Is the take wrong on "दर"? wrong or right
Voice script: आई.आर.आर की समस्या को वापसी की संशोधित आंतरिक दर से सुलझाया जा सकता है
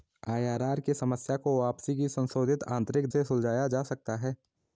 wrong